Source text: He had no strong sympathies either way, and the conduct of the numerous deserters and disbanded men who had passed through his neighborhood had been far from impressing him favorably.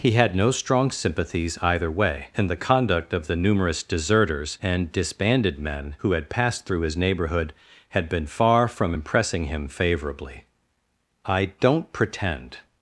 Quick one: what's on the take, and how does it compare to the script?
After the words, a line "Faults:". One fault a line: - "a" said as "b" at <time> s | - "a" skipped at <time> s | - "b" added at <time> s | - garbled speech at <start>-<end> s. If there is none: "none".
He had no strong sympathies either way, and the conduct of the numerous deserters and disbanded men who had passed through his neighborhood had been far from impressing him favorably. "I don't pretend
Faults:
- "I don't pretend" added at 11.3 s